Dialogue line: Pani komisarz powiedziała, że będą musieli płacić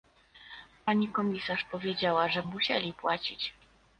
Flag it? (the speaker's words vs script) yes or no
yes